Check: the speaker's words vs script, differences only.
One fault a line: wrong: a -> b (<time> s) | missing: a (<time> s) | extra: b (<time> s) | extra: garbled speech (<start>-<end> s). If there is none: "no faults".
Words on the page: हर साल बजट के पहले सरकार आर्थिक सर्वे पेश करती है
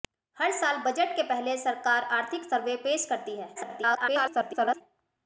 extra: garbled speech (3.6-4.8 s)